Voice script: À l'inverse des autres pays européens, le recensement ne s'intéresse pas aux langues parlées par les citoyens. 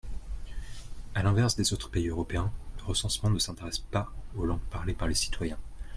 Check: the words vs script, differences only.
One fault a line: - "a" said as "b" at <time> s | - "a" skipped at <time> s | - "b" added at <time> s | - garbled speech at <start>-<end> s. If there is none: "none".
none